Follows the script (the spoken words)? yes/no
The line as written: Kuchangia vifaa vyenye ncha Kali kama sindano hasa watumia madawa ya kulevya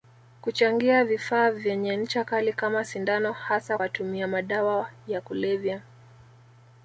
yes